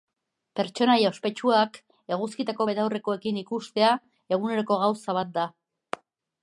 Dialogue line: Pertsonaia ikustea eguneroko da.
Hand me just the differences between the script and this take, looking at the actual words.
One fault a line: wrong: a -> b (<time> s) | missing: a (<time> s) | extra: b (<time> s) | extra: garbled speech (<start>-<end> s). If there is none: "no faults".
extra: ospetsuak eguzkitako betaurrekoekin (1.1 s)
extra: gauza bat (4.9 s)